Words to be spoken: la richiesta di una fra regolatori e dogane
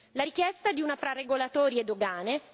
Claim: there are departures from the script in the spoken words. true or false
false